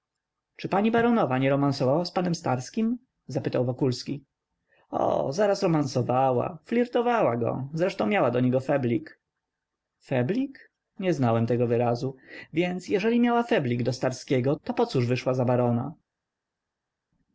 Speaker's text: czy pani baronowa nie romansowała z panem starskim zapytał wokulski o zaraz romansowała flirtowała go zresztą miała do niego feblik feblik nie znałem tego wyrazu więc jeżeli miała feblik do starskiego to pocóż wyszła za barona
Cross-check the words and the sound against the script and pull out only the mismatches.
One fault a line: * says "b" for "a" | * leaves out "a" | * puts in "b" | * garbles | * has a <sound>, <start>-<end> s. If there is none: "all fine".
all fine